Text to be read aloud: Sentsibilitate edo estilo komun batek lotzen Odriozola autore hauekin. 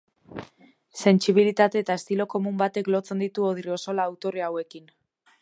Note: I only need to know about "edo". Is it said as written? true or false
false